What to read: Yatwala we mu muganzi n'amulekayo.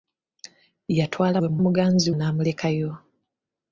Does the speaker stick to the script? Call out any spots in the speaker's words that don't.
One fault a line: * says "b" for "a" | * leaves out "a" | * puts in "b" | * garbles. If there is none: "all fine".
all fine